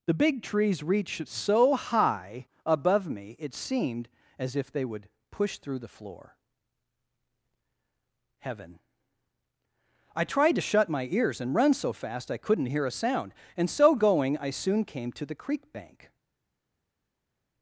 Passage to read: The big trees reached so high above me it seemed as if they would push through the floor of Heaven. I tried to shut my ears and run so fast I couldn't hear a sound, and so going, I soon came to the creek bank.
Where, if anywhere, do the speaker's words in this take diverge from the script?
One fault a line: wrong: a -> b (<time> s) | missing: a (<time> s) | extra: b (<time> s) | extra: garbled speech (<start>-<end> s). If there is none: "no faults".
missing: of (6.4 s)